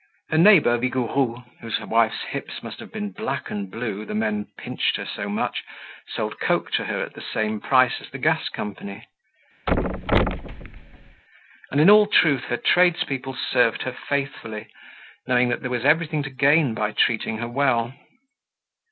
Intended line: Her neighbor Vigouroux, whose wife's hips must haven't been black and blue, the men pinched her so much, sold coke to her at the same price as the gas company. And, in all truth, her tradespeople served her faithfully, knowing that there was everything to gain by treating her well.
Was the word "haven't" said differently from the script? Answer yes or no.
yes